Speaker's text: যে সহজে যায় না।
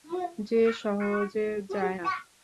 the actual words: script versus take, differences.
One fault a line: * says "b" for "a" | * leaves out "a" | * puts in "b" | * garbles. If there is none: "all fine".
all fine